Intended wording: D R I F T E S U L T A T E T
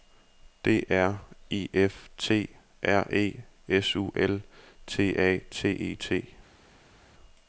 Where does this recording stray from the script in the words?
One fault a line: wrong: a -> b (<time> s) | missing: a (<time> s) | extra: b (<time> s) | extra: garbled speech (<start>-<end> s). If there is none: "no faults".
extra: R (2.8 s)